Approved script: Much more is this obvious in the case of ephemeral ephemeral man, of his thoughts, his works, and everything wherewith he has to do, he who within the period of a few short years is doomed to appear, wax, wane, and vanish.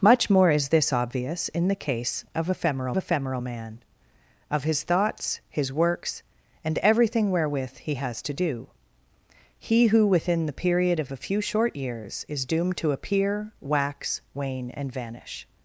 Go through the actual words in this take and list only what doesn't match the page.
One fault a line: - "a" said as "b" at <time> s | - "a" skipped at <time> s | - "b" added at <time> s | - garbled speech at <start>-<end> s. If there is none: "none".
none